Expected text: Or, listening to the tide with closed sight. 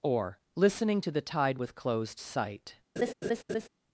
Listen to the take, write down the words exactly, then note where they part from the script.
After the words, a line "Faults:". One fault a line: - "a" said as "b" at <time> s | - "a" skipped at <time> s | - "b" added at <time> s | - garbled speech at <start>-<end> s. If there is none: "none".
Or, listening to the tide with closed sight.
Faults:
none